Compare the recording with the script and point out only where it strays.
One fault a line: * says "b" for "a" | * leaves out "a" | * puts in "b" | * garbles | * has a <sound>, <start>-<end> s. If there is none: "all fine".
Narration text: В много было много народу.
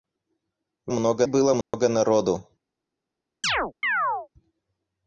* has a dropout, 1.6-1.7 s
* has a chirp, 3.4-4.3 s